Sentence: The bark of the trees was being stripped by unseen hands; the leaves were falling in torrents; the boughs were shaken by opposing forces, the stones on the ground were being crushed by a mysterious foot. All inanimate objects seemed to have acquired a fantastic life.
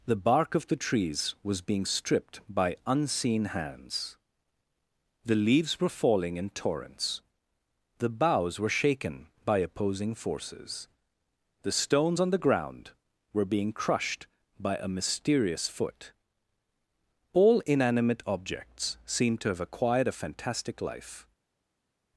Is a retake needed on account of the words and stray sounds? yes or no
no